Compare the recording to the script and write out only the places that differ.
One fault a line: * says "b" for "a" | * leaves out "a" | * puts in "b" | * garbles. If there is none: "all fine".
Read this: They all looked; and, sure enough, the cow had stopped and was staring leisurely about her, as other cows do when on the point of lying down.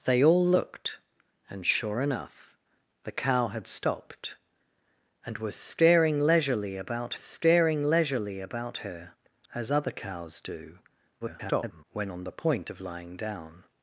* puts in "staring leisurely about"
* garbles